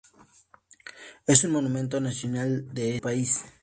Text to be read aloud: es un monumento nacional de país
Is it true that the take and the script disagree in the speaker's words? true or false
false